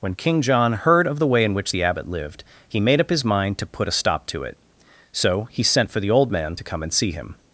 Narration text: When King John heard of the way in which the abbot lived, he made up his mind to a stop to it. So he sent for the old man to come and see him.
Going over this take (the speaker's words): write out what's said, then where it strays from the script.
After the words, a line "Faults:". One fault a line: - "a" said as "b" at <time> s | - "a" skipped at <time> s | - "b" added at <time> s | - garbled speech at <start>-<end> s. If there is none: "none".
When King John heard of the way in which the abbot lived, he made up his mind to put a stop to it. So he sent for the old man to come and see him.
Faults:
- "put" added at 3.7 s